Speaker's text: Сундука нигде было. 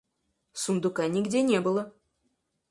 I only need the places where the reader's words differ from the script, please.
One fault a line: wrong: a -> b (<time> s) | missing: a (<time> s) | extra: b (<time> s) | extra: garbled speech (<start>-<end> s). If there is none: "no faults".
extra: не (1.4 s)